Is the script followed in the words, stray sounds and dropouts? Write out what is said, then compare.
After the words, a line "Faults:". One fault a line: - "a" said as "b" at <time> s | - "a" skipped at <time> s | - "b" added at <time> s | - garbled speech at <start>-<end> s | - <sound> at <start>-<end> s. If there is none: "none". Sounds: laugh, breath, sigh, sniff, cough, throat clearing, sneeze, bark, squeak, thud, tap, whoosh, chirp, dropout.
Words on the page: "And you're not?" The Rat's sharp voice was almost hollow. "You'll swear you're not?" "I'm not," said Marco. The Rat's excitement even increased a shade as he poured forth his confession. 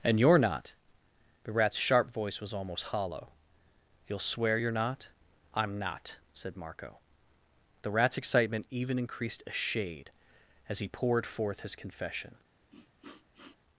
"And you're not?" The Rat's sharp voice was almost hollow. "You'll swear you're not?" "I'm not," said Marco. The Rat's excitement even increased a shade as he poured forth his confession.
Faults:
- sniff at 12.7-13.6 s